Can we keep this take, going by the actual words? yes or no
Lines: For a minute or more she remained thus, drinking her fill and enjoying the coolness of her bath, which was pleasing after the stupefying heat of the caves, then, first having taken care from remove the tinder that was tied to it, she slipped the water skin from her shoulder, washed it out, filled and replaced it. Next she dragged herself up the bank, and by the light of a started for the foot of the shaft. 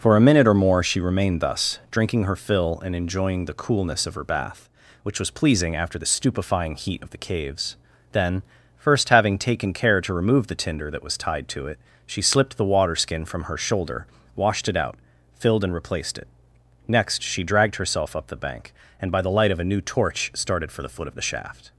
no